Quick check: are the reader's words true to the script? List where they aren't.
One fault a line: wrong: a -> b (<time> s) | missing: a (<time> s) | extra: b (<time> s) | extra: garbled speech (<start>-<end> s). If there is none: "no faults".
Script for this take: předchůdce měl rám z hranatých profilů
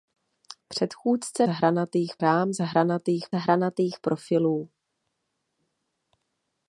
wrong: měl -> hranatých (1.5 s)
extra: hranatých (3.3 s)